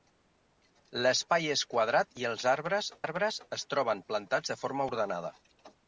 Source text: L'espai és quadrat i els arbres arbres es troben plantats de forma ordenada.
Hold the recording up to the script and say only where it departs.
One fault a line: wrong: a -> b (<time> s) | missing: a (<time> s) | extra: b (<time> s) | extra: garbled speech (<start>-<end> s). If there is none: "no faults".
no faults